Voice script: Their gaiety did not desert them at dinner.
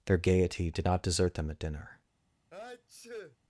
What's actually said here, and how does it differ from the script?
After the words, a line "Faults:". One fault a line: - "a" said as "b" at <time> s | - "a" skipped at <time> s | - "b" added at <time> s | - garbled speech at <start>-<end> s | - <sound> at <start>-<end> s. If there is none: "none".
Their gaiety did not desert them at dinner.
Faults:
- sneeze at 2.5-3.4 s